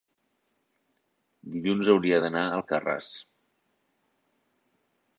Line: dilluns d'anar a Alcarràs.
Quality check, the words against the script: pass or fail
fail